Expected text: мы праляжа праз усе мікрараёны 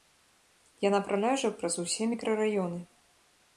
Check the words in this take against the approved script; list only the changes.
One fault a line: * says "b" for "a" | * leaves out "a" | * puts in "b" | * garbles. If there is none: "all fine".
* says "яна" for "мы"